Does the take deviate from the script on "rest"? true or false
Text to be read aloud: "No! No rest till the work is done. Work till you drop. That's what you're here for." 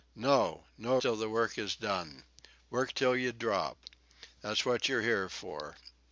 true